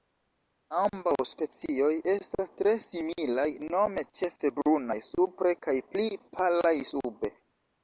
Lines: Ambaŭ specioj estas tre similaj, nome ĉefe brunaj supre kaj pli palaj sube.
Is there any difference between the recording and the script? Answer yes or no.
no